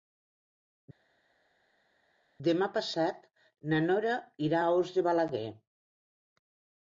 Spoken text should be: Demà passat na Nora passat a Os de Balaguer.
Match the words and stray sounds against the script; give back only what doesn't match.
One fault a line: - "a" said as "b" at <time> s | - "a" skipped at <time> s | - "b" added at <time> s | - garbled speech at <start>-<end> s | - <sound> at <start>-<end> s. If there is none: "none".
- "passat" said as "irà" at 4.5 s